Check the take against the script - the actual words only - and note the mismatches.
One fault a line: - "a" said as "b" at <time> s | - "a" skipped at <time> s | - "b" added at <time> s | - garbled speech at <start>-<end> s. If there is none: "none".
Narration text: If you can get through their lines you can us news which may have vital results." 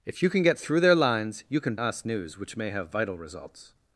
none